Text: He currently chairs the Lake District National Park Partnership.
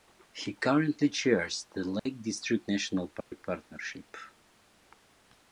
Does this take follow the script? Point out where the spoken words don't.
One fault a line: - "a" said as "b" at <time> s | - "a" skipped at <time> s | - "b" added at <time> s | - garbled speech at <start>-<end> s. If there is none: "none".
none